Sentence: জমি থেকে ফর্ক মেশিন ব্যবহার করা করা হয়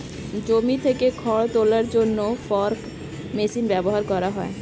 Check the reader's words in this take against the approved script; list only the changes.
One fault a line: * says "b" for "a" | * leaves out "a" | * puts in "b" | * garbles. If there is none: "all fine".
* puts in "খড় তোলার জন্য"
* leaves out "করা"